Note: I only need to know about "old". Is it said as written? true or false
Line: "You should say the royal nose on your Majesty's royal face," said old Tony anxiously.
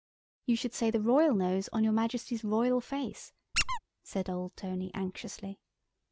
true